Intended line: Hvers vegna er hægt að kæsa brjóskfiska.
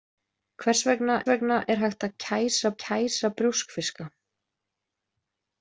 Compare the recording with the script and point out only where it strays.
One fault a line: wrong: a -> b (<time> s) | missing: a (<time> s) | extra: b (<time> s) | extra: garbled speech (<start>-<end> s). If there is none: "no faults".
extra: vegna (1.3 s)
extra: kæsa (2.8 s)